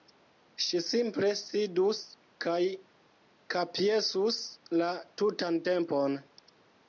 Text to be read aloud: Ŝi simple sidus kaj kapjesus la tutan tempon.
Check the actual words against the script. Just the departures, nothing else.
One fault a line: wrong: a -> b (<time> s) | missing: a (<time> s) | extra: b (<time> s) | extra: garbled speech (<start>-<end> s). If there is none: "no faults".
no faults